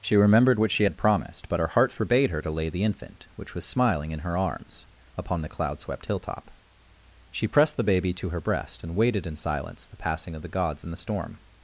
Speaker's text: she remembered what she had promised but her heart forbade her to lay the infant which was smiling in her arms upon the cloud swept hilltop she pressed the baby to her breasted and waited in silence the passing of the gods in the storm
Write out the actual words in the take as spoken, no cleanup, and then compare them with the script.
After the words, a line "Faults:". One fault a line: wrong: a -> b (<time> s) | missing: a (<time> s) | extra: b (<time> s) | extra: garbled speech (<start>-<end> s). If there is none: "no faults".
she remembered what she had promised but her heart forbade her to lay the infant which was smiling in her arms upon the cloud swept hilltop she pressed the baby to her breast and waited in silence the passing of the gods in the storm
Faults:
wrong: breasted -> breast (8.4 s)